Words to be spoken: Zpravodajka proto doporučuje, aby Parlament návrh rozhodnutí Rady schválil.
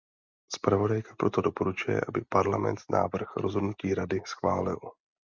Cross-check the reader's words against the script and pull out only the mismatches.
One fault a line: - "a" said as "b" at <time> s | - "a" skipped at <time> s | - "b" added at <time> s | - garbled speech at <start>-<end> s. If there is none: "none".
none